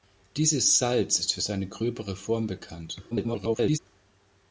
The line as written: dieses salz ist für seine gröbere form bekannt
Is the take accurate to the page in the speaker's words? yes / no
no